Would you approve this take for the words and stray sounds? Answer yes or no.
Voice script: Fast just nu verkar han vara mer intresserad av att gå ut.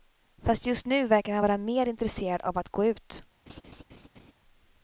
no